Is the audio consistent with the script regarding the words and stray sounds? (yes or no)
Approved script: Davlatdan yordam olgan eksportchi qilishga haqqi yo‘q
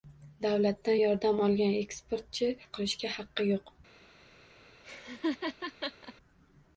no